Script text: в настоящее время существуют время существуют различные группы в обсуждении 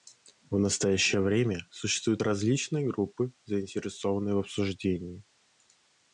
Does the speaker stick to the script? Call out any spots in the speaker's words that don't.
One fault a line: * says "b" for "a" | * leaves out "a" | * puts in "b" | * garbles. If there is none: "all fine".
* leaves out "время существуют"
* puts in "заинтересованные"